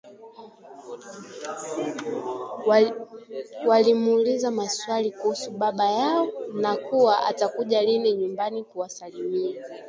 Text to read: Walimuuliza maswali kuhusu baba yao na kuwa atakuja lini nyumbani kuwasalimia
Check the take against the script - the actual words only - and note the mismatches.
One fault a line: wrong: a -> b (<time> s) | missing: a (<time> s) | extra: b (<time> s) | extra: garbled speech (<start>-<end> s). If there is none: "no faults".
no faults